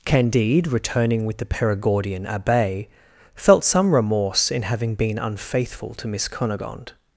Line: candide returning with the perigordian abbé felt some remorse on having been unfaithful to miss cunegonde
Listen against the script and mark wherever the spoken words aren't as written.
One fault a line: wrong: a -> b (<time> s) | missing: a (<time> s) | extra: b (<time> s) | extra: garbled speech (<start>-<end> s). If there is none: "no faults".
wrong: on -> in (4.5 s)